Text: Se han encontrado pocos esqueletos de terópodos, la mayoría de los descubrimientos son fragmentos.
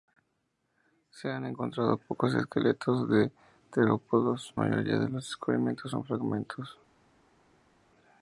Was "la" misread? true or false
true